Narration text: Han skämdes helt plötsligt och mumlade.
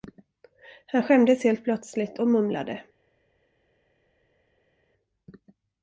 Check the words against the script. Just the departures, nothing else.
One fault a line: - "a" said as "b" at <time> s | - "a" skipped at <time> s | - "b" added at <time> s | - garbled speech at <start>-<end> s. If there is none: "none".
none